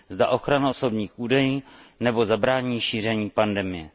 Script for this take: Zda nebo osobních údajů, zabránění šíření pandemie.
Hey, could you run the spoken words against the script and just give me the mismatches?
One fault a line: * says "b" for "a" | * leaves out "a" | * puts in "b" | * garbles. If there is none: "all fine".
* says "ochrana" for "nebo"
* puts in "nebo"